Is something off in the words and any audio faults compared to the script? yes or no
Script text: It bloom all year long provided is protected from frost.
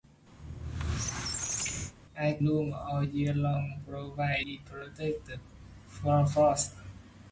yes